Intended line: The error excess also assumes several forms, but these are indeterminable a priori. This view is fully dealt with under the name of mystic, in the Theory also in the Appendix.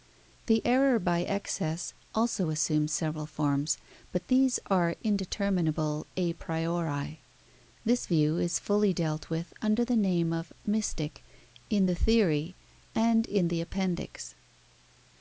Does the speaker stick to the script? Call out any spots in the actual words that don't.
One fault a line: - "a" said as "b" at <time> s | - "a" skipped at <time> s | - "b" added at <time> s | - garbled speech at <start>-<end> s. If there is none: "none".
- "by" added at 1.0 s
- "also" said as "and" at 13.0 s